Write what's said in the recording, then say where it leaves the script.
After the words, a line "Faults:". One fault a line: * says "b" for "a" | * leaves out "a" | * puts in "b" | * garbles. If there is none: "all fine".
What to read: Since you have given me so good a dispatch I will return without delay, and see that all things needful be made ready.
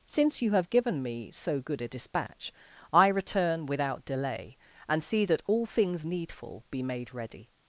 Since you have given me so good a dispatch I return without delay, and see that all things needful be made ready.
Faults:
* leaves out "will"